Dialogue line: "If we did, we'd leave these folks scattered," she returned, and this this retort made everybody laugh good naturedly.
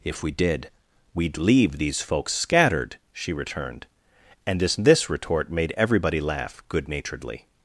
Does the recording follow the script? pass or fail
pass